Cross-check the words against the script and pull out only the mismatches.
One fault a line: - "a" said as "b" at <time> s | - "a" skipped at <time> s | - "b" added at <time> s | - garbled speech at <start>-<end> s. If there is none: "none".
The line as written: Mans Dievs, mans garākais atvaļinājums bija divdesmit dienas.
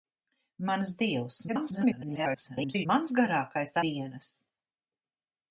- garbled speech at 1.5-2.9 s
- "atvaļinājums bija divdesmit" skipped at 3.8 s